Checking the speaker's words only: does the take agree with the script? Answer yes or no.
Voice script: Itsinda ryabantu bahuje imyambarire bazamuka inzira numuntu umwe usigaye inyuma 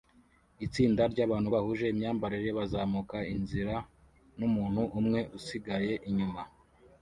yes